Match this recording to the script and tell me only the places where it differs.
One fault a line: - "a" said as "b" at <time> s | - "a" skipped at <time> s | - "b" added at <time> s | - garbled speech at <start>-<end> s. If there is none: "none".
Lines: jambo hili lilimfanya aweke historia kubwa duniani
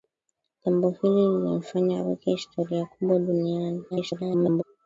- garbled speech at 3.9-4.6 s